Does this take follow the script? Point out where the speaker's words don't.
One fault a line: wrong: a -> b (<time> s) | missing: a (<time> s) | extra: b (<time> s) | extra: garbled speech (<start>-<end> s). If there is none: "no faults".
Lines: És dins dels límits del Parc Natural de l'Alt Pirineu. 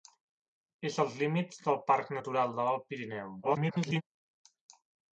missing: dins (0.9 s)
extra: garbled speech (3.4-4.0 s)